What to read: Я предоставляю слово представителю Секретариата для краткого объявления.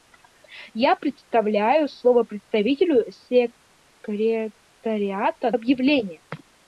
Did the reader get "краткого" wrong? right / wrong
wrong